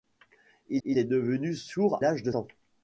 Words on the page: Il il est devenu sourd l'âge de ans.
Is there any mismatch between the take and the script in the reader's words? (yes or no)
no